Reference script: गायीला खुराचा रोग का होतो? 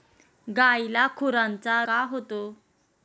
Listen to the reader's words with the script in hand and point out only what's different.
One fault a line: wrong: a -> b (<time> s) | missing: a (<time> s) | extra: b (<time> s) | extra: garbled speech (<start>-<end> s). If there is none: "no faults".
missing: रोग (1.8 s)